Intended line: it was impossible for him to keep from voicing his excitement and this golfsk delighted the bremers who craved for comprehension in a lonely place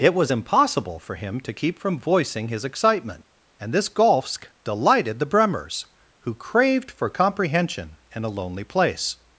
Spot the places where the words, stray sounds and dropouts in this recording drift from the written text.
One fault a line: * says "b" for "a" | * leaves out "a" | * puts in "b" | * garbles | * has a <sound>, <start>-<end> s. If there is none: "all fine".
all fine